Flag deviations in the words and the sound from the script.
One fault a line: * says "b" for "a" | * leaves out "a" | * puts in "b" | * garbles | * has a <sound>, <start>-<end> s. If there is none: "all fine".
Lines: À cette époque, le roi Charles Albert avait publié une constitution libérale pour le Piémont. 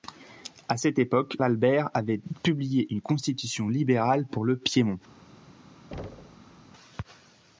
* leaves out "le roi Charles"
* has a thud, 5.9-6.7 s